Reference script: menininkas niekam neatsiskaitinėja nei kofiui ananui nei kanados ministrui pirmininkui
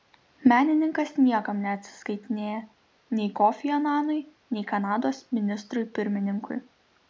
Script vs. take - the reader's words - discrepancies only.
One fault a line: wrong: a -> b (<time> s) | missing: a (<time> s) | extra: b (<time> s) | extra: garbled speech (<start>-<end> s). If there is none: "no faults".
no faults